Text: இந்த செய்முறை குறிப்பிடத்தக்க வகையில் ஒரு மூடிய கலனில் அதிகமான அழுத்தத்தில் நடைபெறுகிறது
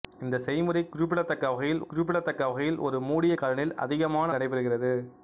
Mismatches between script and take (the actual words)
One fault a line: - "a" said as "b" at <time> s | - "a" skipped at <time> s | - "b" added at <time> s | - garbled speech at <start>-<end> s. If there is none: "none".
- "குறிப்பிடத்தக்க வகையில்" added at 1.8 s
- "அழுத்தத்தில்" skipped at 4.3 s